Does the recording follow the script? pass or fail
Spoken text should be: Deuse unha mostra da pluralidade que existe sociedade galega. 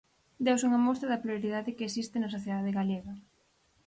fail